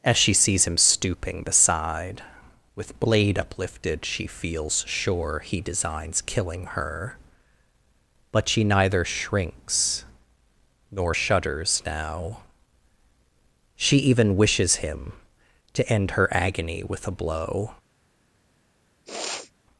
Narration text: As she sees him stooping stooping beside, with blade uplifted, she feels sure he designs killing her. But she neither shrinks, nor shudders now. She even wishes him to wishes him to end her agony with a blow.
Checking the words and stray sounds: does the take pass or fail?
fail